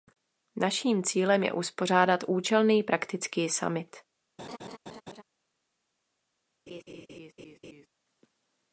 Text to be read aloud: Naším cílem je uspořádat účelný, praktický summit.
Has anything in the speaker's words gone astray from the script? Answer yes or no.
no